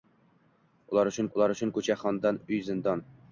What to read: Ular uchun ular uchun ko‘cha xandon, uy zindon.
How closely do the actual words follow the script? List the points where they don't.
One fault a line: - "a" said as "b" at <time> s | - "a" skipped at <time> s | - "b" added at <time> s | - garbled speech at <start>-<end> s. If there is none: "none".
none